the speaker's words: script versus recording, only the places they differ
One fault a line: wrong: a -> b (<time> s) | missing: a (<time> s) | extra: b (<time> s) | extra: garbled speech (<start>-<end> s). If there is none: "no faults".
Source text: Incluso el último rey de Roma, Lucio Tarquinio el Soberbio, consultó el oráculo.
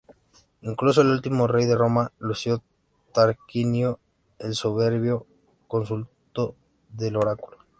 no faults